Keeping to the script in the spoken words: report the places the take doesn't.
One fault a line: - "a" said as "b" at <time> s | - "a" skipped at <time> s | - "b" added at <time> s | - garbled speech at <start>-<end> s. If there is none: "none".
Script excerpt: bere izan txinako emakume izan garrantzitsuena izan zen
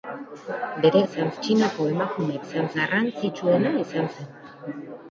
none